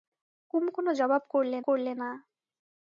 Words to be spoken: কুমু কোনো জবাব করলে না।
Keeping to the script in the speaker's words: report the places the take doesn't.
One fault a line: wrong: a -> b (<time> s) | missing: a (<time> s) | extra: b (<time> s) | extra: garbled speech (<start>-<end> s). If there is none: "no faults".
extra: করলে (1.6 s)